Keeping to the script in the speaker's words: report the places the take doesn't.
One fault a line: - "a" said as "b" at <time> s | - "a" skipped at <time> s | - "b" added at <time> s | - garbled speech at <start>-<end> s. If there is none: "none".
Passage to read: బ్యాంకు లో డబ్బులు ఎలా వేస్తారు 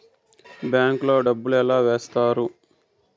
none